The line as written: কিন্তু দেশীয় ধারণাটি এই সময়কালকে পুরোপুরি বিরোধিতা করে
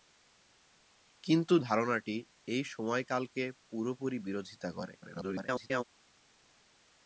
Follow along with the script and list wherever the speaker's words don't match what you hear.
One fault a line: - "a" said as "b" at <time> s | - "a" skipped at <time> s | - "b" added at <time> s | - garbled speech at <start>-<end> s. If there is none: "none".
- "দেশীয়" skipped at 1.5 s
- garbled speech at 5.0-5.8 s